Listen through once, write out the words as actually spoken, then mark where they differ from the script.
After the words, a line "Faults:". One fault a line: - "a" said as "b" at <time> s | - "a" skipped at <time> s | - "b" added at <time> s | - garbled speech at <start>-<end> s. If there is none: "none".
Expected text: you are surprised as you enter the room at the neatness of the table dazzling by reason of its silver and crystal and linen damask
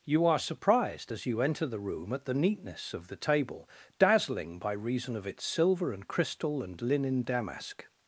you are surprised as you enter the room at the neatness of the table dazzling by reason of its silver and crystal and linen damask
Faults:
none